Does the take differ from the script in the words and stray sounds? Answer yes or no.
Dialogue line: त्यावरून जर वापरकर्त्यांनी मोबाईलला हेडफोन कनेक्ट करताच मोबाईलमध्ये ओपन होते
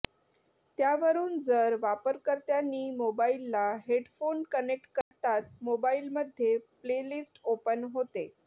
yes